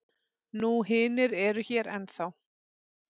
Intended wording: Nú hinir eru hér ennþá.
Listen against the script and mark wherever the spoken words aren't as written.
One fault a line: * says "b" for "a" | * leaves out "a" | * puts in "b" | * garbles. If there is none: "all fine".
all fine